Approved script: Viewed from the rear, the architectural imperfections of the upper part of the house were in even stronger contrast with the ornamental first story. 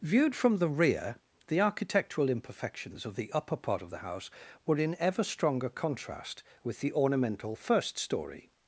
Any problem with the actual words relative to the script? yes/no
yes